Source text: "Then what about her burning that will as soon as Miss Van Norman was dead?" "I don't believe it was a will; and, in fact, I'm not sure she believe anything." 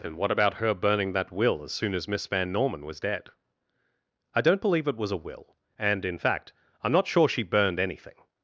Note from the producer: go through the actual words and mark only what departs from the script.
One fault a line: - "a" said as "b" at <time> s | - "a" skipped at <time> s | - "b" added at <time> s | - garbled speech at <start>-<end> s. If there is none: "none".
- "believe" said as "burned" at 7.4 s